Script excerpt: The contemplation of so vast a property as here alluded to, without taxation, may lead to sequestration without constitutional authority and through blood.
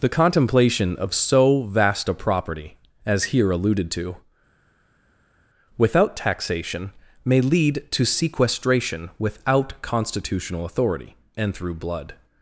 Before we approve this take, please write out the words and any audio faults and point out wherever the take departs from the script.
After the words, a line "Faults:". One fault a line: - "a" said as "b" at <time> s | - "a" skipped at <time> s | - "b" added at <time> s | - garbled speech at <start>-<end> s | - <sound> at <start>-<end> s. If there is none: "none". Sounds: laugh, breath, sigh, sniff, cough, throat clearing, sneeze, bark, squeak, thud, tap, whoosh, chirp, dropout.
The contemplation of so vast a property as here alluded to, without taxation, may lead to sequestration without constitutional authority and through blood.
Faults:
none